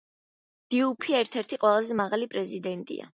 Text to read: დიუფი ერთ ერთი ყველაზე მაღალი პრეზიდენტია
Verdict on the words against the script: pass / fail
pass